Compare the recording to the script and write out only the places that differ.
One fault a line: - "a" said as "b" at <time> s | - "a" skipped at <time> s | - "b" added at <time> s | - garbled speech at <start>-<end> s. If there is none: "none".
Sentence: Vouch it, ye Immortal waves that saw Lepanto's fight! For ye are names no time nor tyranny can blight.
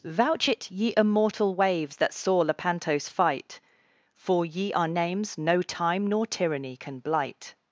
none